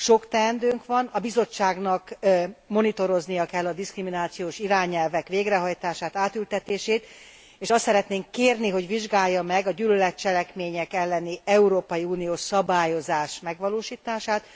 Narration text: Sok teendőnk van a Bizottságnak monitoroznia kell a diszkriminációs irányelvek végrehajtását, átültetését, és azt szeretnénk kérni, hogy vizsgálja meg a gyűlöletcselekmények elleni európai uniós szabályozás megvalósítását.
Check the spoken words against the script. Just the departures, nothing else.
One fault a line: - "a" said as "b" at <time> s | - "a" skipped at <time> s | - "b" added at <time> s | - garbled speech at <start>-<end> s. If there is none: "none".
none